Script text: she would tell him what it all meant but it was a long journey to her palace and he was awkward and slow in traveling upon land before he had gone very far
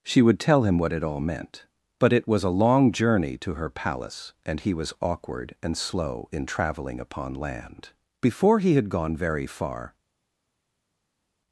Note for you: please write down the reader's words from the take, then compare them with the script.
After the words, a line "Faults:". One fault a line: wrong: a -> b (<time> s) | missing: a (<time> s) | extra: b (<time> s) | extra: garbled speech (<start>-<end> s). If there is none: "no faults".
she would tell him what it all meant but it was a long journey to her palace and he was awkward and slow in traveling upon land before he had gone very far
Faults:
no faults